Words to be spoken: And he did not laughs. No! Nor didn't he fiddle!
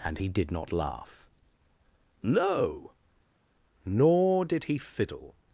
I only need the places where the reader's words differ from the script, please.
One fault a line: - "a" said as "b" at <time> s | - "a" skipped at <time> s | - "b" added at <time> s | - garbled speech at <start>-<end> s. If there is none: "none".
- "laughs" said as "laugh" at 0.7 s
- "didn't" said as "did" at 4.4 s